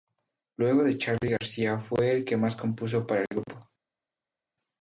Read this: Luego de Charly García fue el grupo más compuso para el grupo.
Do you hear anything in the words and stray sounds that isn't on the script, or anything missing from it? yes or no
yes